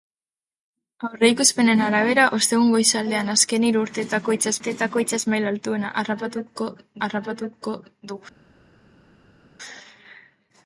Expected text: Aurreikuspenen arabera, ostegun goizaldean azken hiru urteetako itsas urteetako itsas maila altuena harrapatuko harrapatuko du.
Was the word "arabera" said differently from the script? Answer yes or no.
no